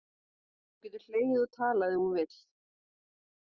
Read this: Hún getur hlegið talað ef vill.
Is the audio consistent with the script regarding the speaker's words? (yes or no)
no